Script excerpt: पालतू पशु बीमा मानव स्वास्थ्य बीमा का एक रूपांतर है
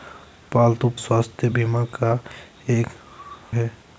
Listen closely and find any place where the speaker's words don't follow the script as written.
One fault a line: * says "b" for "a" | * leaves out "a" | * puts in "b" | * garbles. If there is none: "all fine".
* leaves out "पशु बीमा मानव"
* leaves out "रूपांतर"